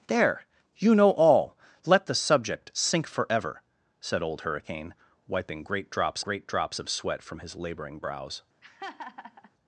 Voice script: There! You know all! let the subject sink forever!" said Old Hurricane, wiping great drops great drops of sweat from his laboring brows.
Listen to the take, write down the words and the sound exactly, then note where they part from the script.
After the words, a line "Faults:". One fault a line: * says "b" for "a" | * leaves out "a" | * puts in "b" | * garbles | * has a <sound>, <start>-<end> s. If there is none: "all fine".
There! You know all! let the subject sink forever!" said Old Hurricane, wiping great drops great drops of sweat from his laboring brows.
Faults:
* has a laugh, 8.6-9.5 s